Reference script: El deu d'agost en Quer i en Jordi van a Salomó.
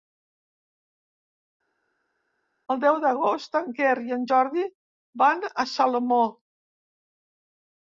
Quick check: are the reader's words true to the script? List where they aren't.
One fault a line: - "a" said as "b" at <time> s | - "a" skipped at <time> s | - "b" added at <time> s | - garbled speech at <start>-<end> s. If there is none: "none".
none